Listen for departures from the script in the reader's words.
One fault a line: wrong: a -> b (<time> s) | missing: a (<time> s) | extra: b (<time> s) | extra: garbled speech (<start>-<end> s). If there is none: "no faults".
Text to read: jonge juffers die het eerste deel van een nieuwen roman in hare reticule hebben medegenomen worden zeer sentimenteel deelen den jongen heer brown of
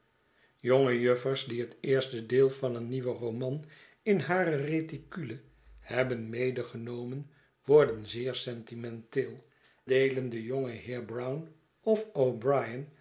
no faults